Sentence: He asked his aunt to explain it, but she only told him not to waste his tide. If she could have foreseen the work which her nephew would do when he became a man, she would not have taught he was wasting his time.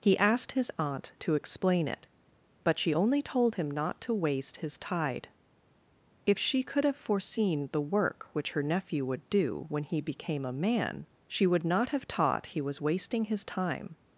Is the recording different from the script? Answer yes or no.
no